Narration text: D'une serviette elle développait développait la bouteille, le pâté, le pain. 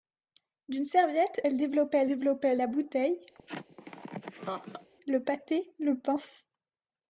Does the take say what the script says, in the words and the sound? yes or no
no